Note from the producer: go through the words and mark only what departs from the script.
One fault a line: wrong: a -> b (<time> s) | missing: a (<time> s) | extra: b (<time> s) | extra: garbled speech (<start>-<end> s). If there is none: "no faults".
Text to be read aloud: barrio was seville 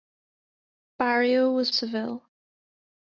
no faults